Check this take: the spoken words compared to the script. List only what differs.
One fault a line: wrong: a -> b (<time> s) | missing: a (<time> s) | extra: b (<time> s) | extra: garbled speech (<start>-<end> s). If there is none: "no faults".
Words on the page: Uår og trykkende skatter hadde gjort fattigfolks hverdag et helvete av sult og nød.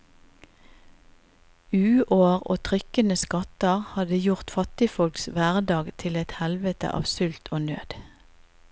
extra: til (6.0 s)